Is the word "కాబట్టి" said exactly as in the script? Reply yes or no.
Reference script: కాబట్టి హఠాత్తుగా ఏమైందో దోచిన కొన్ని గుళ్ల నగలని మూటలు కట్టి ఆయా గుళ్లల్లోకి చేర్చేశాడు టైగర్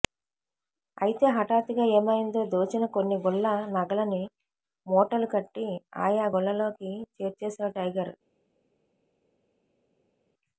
no